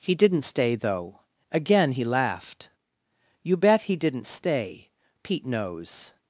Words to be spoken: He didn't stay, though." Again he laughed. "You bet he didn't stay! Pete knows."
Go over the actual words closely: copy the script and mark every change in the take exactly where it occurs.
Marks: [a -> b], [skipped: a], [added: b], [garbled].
He didn't stay, though." Again he laughed. "You bet he didn't stay! Pete knows."